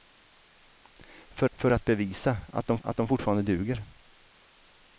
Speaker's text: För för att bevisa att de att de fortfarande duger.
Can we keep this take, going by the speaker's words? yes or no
yes